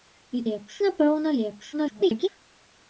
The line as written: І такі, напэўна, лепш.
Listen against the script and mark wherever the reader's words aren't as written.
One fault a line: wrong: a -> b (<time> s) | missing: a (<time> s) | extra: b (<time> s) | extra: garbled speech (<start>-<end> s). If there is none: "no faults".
wrong: такі -> лепш (0.5 s)
extra: garbled speech (1.7-2.3 s)